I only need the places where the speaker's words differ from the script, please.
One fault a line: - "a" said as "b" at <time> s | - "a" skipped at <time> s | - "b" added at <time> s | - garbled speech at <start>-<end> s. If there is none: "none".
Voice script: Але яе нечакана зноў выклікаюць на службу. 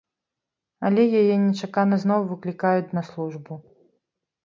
none